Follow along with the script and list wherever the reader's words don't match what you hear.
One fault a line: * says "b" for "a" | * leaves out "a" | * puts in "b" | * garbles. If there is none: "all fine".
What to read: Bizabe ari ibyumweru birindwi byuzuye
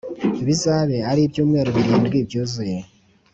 all fine